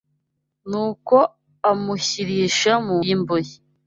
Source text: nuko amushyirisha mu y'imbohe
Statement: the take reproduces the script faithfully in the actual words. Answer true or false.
true